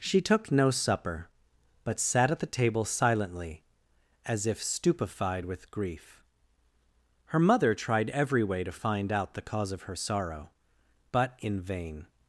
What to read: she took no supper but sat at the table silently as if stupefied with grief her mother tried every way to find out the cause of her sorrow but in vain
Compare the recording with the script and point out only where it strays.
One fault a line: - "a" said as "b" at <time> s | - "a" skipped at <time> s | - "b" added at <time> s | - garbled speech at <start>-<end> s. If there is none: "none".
none